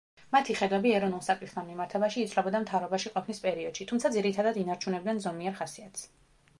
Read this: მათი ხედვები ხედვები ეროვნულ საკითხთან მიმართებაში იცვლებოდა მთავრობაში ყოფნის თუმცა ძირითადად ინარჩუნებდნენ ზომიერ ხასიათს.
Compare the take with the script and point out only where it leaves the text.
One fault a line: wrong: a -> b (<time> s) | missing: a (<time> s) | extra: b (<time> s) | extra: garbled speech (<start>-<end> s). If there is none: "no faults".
missing: ხედვები (0.9 s)
extra: პერიოდში (3.5 s)